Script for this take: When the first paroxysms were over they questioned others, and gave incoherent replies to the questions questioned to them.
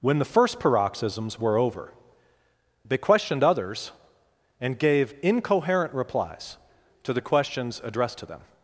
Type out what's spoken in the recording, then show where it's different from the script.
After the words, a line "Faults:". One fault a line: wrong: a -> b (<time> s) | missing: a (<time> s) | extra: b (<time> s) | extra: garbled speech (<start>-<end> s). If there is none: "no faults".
When the first paroxysms were over they questioned others, and gave incoherent replies to the questions addressed to them.
Faults:
wrong: questioned -> addressed (7.8 s)